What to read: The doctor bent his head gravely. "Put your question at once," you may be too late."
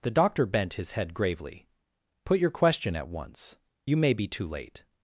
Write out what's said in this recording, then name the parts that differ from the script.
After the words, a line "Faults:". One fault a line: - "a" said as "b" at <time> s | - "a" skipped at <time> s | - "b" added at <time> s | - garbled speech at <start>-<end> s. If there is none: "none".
The doctor bent his head gravely. "Put your question at once," you may be too late."
Faults:
none